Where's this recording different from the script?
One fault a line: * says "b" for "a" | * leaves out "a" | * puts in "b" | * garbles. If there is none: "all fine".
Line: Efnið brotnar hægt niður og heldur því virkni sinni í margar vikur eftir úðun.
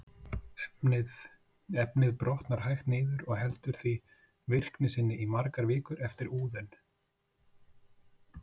all fine